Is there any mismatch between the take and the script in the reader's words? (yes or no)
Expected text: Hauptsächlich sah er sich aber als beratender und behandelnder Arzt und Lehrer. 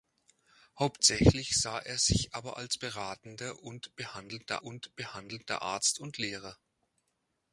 yes